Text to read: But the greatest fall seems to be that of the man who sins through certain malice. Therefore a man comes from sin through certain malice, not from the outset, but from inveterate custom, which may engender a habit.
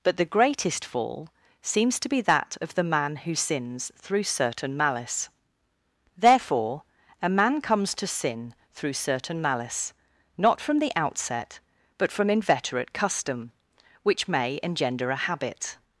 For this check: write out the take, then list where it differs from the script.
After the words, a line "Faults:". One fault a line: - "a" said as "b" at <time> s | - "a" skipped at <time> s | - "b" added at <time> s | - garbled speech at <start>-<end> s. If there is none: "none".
But the greatest fall seems to be that of the man who sins through certain malice. Therefore a man comes to sin through certain malice, not from the outset, but from inveterate custom, which may engender a habit.
Faults:
- "from" said as "to" at 8.0 s